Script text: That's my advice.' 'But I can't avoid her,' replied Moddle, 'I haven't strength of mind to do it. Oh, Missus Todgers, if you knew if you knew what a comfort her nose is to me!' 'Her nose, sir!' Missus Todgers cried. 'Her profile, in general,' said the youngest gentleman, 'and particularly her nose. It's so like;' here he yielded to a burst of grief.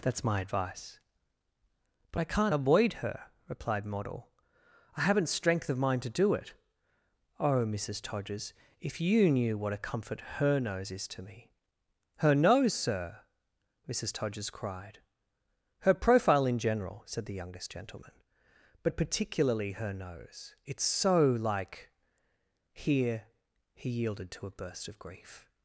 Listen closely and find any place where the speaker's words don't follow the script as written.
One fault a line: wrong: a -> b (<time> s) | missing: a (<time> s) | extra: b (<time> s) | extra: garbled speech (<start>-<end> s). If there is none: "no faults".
missing: if you knew (9.6 s)
wrong: and -> but (18.8 s)